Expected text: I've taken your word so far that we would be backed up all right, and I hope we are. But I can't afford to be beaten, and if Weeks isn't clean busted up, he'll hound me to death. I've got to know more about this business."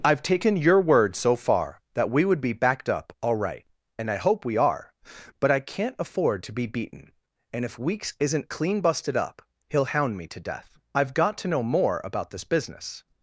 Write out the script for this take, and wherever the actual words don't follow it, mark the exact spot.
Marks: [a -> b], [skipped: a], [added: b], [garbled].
I've taken your word so far that we would be backed up all right, and I hope we are. But I can't afford to be beaten, and if Weeks isn't clean busted up, he'll hound me to death. I've got to know more about this business."